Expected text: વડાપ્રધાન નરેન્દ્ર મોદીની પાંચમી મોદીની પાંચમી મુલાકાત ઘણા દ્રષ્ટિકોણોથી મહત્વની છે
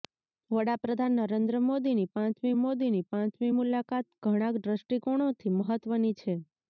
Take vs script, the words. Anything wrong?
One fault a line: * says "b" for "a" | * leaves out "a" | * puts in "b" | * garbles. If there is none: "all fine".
all fine